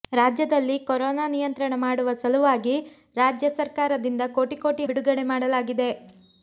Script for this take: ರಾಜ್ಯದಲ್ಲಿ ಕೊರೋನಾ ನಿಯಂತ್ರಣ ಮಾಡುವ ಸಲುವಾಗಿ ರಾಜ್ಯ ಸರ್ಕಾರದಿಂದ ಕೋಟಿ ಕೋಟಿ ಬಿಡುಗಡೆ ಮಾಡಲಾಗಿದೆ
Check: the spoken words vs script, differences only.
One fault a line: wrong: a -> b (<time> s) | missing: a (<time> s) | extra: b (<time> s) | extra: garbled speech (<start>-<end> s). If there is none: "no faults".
no faults